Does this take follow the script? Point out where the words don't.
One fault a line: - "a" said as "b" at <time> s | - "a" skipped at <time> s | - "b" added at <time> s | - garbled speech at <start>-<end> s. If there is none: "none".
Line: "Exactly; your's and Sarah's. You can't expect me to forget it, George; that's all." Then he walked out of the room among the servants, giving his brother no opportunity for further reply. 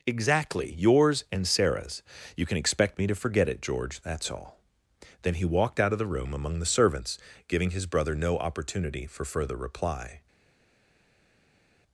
- "can't" said as "can" at 2.5 s